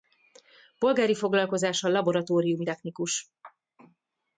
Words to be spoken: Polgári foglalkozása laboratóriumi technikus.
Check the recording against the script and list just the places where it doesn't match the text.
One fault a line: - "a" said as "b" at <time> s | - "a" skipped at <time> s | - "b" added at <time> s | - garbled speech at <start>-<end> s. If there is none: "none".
none